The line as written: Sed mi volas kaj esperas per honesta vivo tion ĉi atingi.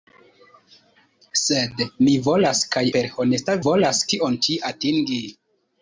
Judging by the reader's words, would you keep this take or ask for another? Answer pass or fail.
fail